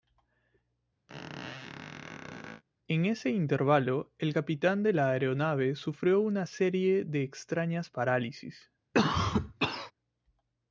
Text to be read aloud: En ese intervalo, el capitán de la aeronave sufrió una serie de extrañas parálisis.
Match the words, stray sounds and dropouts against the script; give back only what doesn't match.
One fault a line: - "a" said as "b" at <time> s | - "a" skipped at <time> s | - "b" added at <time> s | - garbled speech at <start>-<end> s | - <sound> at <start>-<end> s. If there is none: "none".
- squeak at 1.1-2.6 s
- cough at 8.9-9.9 s